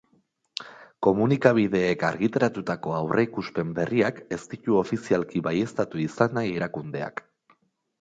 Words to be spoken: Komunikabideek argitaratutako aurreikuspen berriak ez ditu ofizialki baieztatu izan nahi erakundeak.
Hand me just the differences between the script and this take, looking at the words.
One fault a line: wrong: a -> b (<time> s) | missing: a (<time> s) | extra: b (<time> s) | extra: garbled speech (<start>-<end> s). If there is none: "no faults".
no faults